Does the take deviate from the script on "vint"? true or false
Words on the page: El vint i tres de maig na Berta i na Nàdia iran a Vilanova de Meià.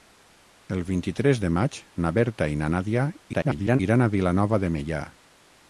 false